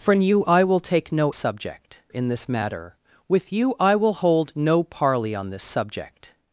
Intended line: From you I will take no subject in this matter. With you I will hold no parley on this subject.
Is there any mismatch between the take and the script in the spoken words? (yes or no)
no